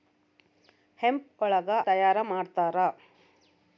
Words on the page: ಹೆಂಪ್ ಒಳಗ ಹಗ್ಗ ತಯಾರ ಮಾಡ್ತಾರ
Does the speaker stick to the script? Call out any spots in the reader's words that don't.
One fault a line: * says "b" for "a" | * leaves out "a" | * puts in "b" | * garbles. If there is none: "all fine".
* leaves out "ಹಗ್ಗ"